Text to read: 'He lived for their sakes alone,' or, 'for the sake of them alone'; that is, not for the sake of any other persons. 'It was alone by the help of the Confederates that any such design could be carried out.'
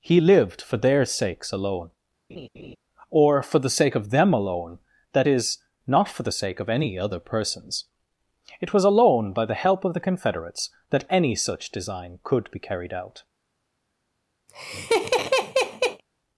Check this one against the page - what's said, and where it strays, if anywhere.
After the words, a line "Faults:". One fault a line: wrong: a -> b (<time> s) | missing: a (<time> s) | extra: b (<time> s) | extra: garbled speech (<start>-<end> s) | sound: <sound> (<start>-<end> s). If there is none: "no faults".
'He lived for their sakes alone,' or, 'for the sake of them alone'; that is, not for the sake of any other persons. 'It was alone by the help of the Confederates that any such design could be carried out.'
Faults:
sound: laugh (2.3-2.8 s)
sound: laugh (14.5-16.0 s)